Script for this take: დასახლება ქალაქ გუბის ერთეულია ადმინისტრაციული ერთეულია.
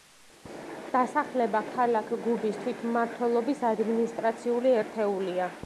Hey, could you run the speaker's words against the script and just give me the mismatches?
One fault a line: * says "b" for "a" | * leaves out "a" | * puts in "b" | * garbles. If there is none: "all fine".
* says "თვითმმართველობის" for "ერთეულია"